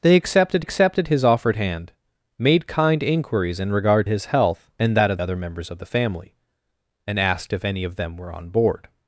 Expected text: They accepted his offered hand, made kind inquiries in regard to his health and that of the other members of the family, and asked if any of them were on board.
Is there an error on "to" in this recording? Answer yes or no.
yes